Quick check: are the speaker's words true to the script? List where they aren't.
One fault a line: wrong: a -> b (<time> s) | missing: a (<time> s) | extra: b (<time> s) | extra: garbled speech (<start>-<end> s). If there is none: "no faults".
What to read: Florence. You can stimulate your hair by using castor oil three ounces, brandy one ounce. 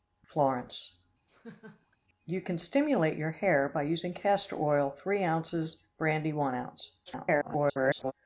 extra: garbled speech (7.1-8.1 s)